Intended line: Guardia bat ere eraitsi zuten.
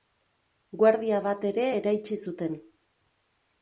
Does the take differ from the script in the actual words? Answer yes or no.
no